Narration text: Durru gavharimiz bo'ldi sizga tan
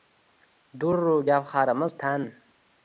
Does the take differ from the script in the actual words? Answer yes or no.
yes